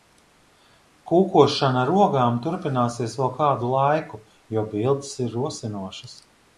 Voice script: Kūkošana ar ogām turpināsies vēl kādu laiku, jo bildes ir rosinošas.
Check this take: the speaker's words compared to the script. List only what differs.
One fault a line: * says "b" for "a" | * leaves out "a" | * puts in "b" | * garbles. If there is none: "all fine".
all fine